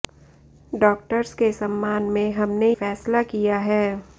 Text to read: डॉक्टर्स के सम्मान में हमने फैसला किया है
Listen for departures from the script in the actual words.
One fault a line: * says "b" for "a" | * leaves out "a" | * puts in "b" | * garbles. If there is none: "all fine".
all fine